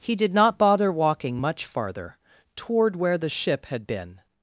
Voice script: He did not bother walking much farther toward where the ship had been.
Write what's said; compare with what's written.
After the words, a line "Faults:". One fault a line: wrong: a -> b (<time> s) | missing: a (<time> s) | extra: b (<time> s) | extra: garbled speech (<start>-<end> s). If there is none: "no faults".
He did not bother walking much farther toward where the ship had been.
Faults:
no faults